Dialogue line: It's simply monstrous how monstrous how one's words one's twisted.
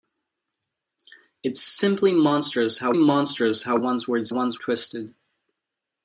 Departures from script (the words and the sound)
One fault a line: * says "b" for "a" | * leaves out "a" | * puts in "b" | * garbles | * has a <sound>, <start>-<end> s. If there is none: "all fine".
all fine